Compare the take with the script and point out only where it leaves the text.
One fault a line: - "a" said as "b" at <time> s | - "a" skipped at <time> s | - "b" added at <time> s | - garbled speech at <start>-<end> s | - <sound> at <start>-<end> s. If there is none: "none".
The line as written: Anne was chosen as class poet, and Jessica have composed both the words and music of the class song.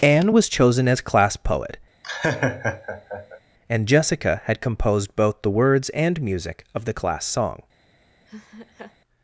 - laugh at 2.0-3.4 s
- "have" said as "had" at 4.4 s
- laugh at 8.3-9.0 s